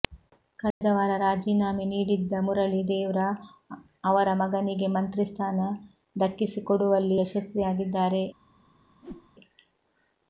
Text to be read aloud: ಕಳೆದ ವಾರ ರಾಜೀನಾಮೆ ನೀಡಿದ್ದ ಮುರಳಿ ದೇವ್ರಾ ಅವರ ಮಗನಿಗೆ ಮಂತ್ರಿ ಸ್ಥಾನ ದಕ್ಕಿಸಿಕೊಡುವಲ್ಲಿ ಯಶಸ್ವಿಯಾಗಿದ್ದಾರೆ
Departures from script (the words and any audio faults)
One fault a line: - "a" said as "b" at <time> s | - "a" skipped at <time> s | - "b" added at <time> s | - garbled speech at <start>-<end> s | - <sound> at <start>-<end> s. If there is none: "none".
- dropout at 0.7-0.8 s
- whoosh at 9.0-9.3 s